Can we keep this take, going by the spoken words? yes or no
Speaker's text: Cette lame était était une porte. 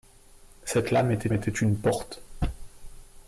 yes